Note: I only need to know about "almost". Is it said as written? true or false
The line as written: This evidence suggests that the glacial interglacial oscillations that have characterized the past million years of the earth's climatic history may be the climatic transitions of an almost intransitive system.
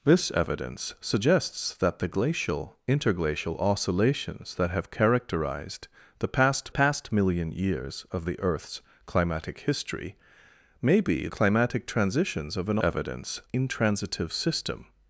false